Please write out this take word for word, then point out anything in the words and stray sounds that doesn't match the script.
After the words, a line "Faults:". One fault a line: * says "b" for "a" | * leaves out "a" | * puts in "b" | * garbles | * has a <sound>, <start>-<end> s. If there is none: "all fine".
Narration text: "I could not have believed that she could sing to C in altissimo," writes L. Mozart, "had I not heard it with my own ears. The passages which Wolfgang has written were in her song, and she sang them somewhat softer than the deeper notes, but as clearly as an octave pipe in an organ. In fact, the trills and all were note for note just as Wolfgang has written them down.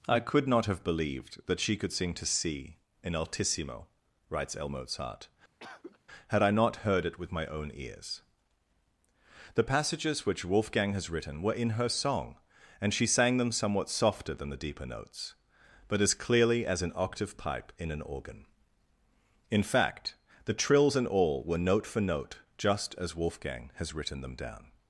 "I could not have believed that she could sing to C in altissimo," writes L. Mozart, "had I not heard it with my own ears. The passages which Wolfgang has written were in her song, and she sang them somewhat softer than the deeper notes, but as clearly as an octave pipe in an organ. In fact, the trills and all were note for note just as Wolfgang has written them down.
Faults:
* has a cough, 5.6-6.0 s